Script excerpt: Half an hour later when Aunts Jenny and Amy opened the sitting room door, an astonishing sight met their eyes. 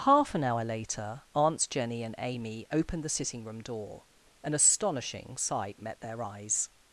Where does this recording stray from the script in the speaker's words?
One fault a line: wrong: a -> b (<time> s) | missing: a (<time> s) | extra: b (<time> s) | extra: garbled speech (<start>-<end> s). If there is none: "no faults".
missing: when (1.2 s)